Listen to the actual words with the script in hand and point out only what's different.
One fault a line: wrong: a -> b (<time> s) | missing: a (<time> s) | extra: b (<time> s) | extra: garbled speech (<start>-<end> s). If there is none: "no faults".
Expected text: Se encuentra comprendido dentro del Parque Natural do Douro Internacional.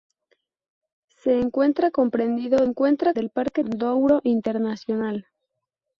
wrong: dentro -> encuentra (2.6 s)
missing: Natural do (3.6 s)